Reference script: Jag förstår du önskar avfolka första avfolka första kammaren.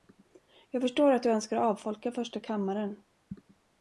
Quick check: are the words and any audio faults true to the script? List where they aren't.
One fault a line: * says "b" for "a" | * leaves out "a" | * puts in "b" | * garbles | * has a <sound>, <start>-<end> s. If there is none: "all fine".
* puts in "att"
* leaves out "avfolka första"